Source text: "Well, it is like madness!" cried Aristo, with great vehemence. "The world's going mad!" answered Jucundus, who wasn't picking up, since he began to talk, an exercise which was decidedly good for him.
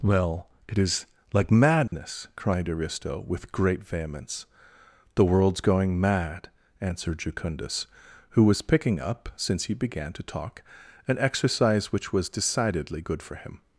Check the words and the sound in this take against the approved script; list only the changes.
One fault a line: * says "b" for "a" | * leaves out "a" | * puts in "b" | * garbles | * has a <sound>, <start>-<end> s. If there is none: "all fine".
* has a dropout, 1.9-1.9 s
* says "was" for "wasn't"